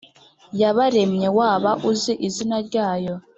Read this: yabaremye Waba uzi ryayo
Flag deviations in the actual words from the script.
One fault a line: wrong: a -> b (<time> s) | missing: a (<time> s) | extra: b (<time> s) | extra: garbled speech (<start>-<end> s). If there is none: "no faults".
extra: izina (2.3 s)